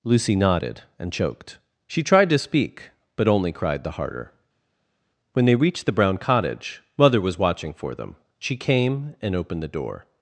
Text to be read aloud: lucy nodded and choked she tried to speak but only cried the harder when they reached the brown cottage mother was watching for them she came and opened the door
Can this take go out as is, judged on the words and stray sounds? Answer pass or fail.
pass